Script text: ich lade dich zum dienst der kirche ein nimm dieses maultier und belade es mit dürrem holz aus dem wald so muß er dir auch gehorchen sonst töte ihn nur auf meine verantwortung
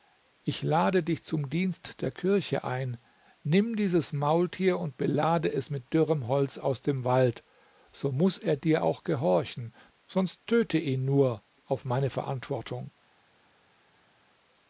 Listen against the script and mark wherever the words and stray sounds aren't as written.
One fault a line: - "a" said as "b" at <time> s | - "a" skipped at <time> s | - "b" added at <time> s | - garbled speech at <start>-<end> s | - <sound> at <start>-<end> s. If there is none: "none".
none